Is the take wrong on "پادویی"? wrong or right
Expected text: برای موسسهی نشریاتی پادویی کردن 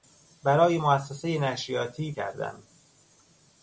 wrong